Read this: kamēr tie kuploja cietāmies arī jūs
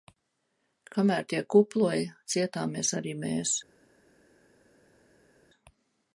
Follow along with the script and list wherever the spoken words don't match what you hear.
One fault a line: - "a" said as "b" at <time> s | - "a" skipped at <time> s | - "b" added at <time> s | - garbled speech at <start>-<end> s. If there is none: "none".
- "jūs" said as "mēs" at 3.2 s